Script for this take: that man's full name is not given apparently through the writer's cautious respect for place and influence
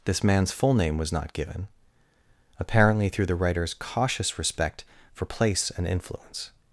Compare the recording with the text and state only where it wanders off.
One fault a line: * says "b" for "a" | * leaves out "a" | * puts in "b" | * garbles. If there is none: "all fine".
* says "this" for "that"
* says "was" for "is"